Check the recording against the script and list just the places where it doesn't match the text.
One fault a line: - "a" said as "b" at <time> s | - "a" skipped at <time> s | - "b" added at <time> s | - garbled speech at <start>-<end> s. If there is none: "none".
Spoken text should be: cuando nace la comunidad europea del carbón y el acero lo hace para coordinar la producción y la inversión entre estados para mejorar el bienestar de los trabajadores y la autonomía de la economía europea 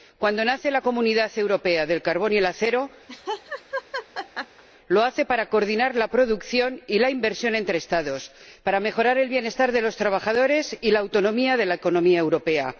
none